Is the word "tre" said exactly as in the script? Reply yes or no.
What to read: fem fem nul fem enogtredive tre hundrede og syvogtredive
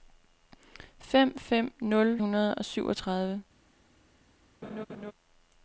no